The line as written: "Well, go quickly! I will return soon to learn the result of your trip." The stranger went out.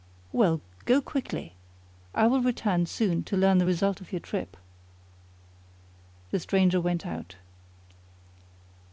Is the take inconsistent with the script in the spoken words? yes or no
no